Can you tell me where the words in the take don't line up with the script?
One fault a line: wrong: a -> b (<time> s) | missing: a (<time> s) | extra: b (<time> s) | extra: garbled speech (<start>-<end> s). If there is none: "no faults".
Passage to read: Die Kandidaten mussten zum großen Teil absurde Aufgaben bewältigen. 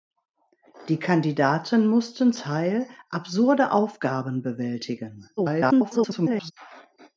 missing: zum großen (2.3 s)
extra: garbled speech (5.4-6.5 s)